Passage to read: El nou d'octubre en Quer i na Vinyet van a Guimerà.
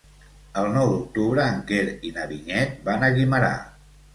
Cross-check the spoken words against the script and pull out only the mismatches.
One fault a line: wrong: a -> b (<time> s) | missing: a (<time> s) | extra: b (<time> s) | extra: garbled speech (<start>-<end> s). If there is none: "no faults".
no faults